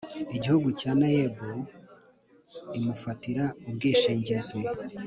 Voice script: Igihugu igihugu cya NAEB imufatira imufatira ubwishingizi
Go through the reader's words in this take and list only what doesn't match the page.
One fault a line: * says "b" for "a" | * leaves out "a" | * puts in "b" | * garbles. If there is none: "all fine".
* leaves out "igihugu"
* leaves out "imufatira"